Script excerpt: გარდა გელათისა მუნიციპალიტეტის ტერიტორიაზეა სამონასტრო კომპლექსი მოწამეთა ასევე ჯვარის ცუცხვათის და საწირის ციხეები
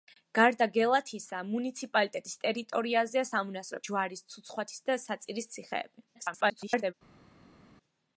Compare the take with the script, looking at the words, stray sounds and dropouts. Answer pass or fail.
fail